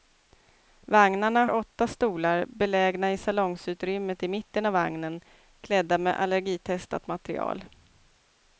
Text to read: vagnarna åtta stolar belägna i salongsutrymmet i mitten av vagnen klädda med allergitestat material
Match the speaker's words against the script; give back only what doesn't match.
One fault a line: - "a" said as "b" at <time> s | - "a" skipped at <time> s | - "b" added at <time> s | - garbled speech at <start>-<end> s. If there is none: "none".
none